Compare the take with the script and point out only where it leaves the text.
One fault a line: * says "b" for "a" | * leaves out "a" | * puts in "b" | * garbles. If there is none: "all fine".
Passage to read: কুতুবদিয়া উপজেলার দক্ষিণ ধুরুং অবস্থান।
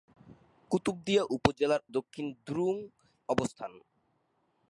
all fine